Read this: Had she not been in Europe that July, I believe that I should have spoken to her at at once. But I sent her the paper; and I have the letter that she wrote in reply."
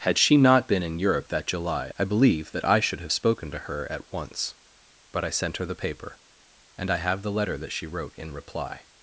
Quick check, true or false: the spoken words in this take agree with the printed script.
false